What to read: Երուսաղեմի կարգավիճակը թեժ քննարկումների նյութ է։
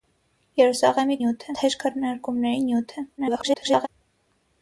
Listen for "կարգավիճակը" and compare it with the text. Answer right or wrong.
wrong